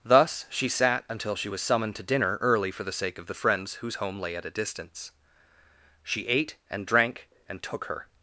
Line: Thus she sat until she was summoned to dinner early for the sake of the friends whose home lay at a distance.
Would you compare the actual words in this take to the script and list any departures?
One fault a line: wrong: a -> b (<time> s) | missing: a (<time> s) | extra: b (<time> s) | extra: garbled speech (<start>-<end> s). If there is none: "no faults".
extra: She ate and drank and took her (6.0 s)